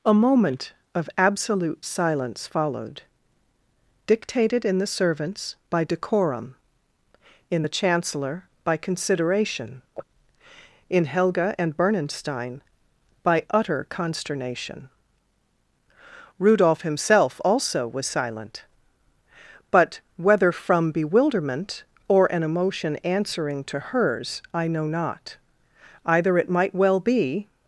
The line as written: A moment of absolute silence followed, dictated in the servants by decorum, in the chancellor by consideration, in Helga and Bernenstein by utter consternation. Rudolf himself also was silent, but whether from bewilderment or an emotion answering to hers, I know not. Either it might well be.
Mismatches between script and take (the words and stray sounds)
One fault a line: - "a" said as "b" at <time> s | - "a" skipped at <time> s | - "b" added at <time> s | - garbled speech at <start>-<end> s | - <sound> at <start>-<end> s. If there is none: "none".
none